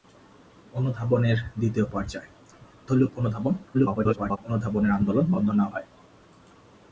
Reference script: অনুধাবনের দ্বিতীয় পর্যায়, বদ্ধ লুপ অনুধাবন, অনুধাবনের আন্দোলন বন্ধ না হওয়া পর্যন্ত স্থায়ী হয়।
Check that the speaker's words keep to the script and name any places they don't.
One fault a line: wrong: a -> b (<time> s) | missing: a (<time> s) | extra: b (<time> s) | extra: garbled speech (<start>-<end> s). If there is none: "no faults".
missing: বদ্ধ (2.3 s)
extra: garbled speech (3.7-4.4 s)
missing: হওয়া পর্যন্ত স্থায়ী (5.6 s)